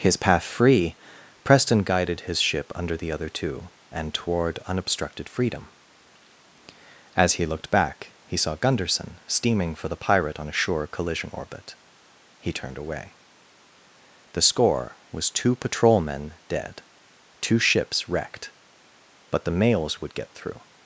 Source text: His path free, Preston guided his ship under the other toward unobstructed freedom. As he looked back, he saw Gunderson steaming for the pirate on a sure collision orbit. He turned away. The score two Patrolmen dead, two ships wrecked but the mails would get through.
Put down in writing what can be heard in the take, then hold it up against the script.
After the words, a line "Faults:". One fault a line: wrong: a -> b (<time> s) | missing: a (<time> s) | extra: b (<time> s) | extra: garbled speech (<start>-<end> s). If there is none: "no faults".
His path free, Preston guided his ship under the other two and toward unobstructed freedom. As he looked back, he saw Gunderson steaming for the pirate on a sure collision orbit. He turned away. The score was two Patrolmen dead, two ships wrecked but the mails would get through.
Faults:
extra: two and (3.3 s)
extra: was (15.1 s)